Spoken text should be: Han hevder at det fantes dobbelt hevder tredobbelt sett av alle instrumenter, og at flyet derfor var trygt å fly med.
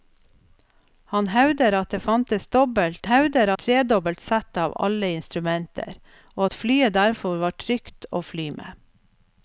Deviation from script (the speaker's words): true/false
false